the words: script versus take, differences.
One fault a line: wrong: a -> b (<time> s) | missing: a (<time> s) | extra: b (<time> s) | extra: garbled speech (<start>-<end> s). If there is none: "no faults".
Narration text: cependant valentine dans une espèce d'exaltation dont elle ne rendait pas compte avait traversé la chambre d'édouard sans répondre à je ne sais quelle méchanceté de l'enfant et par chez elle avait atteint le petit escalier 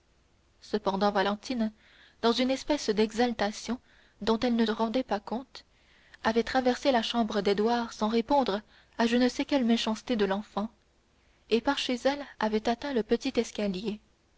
no faults